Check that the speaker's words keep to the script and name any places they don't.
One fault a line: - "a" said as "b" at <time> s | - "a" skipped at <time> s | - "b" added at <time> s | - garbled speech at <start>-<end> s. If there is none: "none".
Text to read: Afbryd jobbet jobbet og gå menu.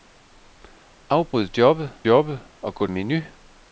none